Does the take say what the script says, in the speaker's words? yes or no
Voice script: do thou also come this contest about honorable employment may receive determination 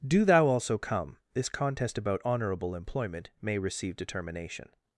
yes